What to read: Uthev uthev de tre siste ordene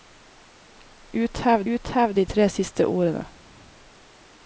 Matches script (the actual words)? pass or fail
pass